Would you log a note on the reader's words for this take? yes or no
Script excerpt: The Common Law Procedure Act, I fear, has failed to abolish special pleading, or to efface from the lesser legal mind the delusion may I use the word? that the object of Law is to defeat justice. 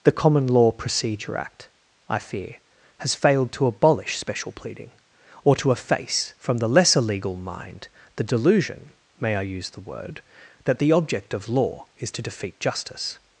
no